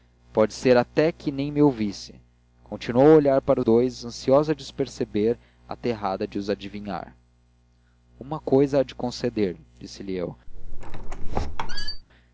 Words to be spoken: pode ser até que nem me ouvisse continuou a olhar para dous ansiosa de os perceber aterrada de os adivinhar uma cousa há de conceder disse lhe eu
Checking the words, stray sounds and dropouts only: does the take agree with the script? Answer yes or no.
no